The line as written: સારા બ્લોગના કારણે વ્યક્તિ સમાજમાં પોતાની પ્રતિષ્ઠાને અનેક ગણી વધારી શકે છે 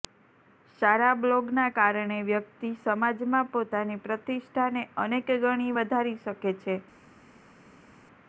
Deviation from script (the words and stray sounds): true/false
false